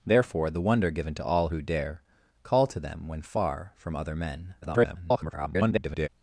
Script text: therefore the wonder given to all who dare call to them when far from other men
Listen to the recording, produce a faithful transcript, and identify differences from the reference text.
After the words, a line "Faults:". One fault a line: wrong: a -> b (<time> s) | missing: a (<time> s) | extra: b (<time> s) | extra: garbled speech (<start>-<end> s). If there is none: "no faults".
therefore the wonder given to all who dare call to them when far from other men [garbled]
Faults:
extra: garbled speech (4.6-6.1 s)